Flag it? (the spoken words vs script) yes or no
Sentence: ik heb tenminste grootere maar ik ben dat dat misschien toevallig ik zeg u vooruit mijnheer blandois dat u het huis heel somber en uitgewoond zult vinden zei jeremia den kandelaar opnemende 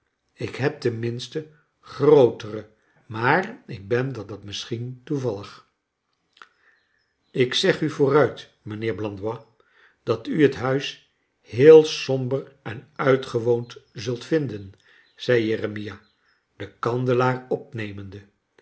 no